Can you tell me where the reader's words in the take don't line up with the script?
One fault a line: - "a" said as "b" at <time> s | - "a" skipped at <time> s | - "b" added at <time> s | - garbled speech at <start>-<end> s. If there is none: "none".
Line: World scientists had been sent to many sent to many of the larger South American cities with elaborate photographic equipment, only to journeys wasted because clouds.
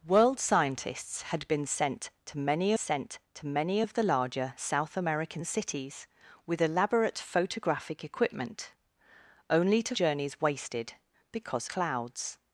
none